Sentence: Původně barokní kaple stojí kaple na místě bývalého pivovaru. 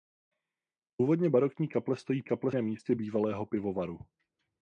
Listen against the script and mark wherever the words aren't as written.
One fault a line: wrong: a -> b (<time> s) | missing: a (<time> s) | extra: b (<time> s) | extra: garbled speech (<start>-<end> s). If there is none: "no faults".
no faults